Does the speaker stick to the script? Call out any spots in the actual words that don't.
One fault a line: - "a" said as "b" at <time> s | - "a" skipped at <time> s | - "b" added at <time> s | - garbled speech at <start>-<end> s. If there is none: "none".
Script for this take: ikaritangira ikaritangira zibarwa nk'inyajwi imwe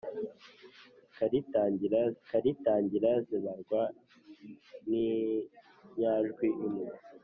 none